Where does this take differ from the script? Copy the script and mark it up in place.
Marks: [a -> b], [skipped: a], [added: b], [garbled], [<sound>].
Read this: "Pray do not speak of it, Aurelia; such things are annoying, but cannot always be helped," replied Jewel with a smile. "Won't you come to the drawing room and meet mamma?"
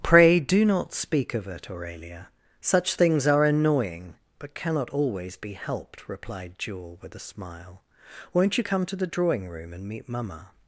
"Pray do not speak of it, Aurelia; such things are annoying, but cannot always be helped," replied Jewel with a smile. "Won't you come to the drawing room and meet mamma?"